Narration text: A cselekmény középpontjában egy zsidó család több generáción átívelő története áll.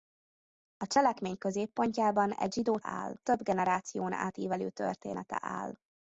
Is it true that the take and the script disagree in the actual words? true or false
true